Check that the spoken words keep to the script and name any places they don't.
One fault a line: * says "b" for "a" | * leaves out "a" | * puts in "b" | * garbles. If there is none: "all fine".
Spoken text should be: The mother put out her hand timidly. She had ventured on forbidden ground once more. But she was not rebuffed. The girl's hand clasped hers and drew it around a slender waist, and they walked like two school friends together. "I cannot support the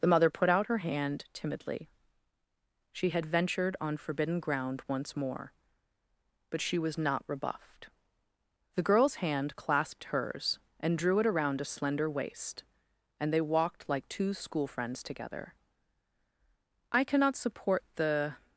all fine